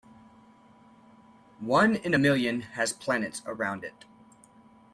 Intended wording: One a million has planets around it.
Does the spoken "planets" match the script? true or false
true